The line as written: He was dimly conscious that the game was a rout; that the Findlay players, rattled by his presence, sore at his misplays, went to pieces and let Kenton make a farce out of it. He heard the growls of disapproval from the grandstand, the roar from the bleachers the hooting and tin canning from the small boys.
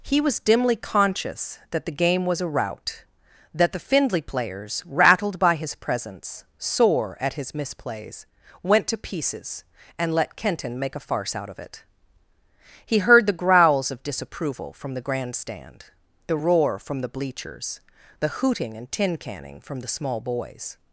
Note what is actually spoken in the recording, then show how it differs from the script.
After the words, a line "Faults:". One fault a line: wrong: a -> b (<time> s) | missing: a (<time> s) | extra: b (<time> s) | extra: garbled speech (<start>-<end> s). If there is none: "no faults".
He was dimly conscious that the game was a rout; that the Findlay players, rattled by his presence, sore at his misplays, went to pieces and let Kenton make a farce out of it. He heard the growls of disapproval from the grandstand, the roar from the bleachers the hooting and tin canning from the small boys.
Faults:
no faults